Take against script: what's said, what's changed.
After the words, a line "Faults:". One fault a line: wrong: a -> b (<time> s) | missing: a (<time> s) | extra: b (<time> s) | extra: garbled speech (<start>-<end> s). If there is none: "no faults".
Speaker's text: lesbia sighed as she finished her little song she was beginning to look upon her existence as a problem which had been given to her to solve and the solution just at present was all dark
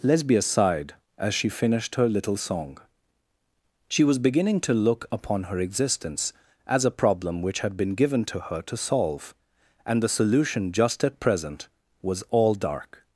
lesbia sighed as she finished her little song she was beginning to look upon her existence as a problem which had been given to her to solve and the solution just at present was all dark
Faults:
no faults